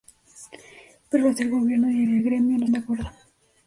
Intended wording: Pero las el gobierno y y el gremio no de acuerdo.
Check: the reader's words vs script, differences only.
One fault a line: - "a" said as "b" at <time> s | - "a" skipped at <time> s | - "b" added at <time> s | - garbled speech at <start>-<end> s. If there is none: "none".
none